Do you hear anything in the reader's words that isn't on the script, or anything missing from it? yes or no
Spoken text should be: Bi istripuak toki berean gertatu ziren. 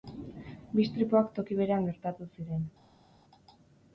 no